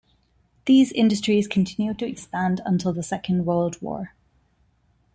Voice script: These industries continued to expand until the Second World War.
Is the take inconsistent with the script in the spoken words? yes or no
no